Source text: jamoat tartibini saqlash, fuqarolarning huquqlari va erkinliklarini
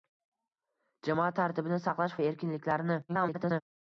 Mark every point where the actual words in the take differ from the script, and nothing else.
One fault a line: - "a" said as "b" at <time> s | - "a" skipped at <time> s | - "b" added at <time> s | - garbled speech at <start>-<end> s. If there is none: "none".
- "fuqarolarning huquqlari" skipped at 2.2 s
- garbled speech at 3.1-3.6 s